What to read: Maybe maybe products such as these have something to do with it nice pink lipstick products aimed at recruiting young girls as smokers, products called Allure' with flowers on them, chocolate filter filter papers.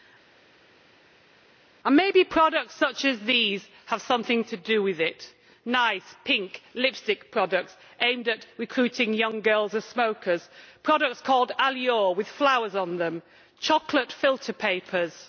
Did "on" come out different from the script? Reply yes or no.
no